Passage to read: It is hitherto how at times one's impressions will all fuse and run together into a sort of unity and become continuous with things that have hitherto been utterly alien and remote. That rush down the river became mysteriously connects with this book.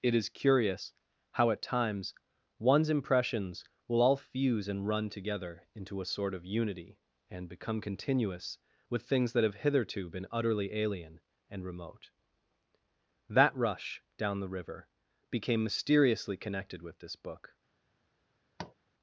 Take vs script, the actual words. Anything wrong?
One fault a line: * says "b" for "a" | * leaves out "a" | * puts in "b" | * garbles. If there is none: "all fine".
* says "curious" for "hitherto"
* says "connected" for "connects"